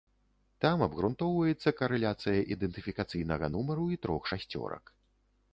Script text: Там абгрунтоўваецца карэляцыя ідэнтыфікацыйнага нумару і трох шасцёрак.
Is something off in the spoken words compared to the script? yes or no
no